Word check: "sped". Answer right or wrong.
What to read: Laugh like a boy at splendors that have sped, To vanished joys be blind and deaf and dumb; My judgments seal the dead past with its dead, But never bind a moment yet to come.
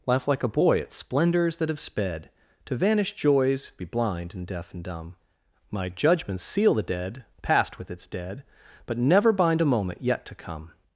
right